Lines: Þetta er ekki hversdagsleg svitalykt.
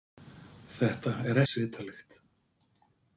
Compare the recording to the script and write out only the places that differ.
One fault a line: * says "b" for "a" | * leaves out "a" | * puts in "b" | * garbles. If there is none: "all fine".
* leaves out "ekki hversdagsleg"